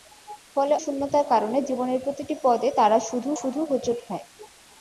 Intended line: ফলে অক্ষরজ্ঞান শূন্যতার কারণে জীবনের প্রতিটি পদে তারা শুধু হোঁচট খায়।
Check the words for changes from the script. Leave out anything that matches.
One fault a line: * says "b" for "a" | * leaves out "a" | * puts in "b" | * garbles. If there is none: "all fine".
* leaves out "অক্ষরজ্ঞান"
* puts in "শুধু"